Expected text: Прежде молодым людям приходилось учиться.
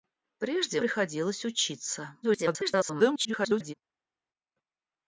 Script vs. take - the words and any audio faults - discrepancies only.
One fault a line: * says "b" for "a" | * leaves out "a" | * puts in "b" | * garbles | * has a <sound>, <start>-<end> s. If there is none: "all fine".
* leaves out "молодым людям"
* garbles